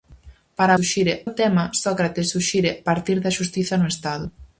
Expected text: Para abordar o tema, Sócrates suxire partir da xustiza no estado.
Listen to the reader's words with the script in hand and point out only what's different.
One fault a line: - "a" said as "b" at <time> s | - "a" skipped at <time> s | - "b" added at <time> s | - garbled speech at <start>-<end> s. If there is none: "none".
- "abordar" said as "suxire" at 0.8 s